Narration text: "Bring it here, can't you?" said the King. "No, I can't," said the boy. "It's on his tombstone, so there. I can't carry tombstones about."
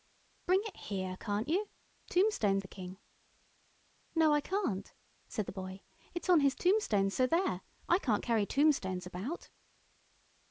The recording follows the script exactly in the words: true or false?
false